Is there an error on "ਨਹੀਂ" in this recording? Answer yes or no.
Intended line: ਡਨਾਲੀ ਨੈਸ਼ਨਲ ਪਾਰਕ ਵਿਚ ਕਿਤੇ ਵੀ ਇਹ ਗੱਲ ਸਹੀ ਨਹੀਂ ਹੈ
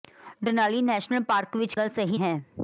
yes